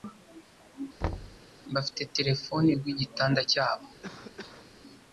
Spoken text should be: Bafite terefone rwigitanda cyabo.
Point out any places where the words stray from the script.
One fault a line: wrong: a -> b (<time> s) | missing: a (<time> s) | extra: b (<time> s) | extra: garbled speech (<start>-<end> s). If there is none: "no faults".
no faults